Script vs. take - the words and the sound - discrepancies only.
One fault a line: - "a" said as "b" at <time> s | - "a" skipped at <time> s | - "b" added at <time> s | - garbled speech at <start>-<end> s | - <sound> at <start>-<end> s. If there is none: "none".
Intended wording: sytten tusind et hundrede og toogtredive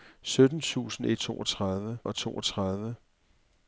- "hundrede" said as "toogtredive" at 1.2 s